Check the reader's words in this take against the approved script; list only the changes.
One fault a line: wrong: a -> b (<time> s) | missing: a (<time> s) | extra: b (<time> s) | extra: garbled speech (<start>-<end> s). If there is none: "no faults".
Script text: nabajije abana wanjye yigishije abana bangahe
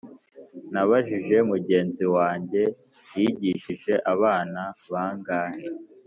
wrong: abana -> mugenzi (1.5 s)